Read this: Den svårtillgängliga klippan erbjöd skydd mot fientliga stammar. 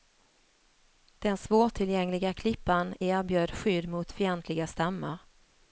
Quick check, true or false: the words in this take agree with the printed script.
true